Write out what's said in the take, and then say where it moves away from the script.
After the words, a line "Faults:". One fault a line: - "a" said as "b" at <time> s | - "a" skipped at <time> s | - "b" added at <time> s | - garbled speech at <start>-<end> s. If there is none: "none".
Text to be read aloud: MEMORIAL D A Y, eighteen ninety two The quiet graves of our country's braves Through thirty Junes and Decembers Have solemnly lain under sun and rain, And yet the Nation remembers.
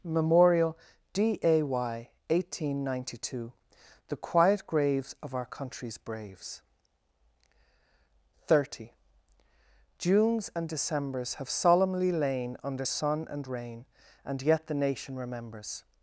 MEMORIAL D A Y, eighteen ninety two The quiet graves of our country's braves thirty Junes and Decembers Have solemnly lain under sun and rain, And yet the Nation remembers.
Faults:
- "Through" skipped at 6.6 s